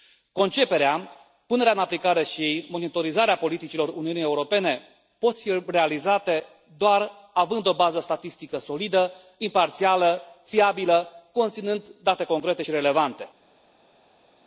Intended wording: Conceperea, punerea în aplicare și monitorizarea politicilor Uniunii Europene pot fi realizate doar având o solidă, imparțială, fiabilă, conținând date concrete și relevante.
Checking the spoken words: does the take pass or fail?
fail